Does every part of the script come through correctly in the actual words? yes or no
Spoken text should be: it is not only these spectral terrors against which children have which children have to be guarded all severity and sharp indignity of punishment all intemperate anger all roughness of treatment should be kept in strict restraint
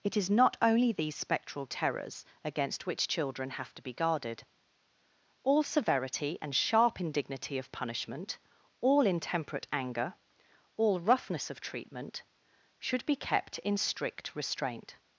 no